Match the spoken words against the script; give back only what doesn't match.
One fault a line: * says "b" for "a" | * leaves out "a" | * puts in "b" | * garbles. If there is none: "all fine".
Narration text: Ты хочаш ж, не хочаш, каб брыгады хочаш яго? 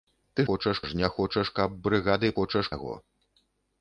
all fine